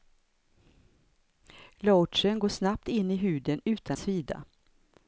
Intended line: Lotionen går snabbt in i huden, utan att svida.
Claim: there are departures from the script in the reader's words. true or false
true